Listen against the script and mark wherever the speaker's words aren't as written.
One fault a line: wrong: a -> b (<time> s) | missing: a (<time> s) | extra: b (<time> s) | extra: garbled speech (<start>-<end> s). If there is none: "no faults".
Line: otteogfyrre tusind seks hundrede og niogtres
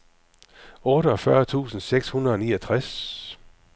no faults